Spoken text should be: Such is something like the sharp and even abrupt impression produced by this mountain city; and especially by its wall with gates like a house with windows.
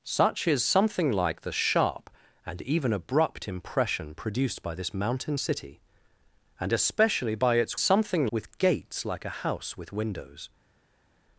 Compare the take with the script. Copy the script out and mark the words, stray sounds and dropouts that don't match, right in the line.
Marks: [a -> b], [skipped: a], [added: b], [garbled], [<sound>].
Such is something like the sharp and even abrupt impression produced by this mountain city; and especially by its [wall -> something] with gates like a house with windows.